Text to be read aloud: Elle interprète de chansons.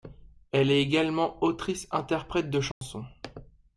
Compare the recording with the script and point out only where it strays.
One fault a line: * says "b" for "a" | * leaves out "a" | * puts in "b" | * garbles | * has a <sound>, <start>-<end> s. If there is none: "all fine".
* puts in "est également autrice"
* has a dropout, 2.7-2.8 s